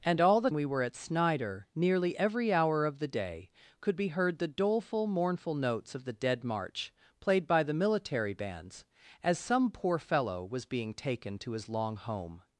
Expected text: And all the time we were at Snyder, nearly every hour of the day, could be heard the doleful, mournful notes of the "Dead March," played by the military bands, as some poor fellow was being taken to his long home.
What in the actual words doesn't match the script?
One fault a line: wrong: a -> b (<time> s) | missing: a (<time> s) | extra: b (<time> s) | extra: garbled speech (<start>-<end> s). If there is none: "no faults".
missing: time (0.5 s)